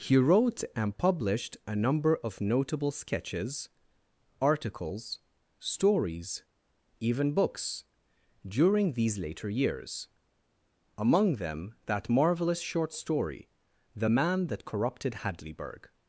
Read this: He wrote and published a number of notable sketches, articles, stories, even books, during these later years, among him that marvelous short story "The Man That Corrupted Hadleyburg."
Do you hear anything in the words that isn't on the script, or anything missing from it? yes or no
yes